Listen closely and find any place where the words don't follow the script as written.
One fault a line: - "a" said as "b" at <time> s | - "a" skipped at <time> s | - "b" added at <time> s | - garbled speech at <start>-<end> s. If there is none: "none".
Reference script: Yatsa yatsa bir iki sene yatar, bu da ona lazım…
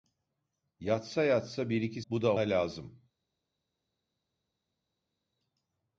- "sene yatar" skipped at 2.0 s
- "ona" skipped at 2.4 s